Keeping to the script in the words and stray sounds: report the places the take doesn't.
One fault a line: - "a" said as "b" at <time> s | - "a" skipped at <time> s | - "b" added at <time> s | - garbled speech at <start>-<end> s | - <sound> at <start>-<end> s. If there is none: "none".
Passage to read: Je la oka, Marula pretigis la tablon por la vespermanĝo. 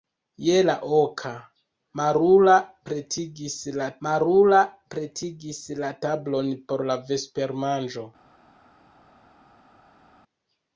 - "Marula pretigis la" added at 4.1 s